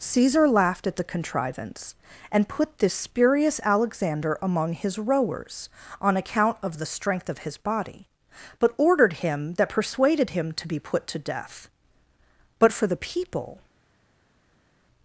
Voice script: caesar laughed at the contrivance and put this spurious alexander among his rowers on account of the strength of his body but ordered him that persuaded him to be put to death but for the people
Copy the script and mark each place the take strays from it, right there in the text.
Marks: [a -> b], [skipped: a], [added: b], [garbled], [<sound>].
caesar laughed at the contrivance and put this spurious alexander among his rowers on account of the strength of his body but ordered him that persuaded him to be put to death but for the people